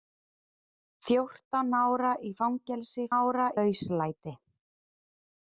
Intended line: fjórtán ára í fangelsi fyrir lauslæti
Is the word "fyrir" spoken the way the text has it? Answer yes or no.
no